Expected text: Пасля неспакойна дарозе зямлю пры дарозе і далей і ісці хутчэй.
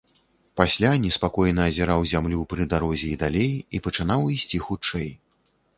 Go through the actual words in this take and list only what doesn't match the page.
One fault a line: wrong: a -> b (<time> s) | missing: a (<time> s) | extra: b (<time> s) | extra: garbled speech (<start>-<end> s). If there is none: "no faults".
wrong: дарозе -> азіраў (1.7 s)
extra: пачынаў (3.9 s)